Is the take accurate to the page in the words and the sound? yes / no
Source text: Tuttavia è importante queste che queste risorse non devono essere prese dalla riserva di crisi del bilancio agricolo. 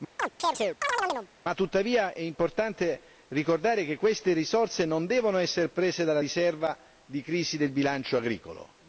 no